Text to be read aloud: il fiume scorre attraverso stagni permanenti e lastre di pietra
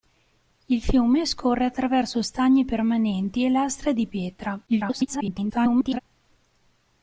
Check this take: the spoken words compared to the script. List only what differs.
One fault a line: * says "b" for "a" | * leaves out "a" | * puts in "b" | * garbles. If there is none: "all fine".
* garbles